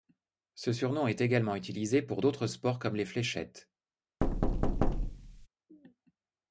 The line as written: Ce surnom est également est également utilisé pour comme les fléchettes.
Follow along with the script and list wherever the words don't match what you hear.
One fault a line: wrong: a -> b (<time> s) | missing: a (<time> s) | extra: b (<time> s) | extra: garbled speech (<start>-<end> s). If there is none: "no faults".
wrong: est également utilisé pour -> utilisé pour d'autres sports (1.6 s)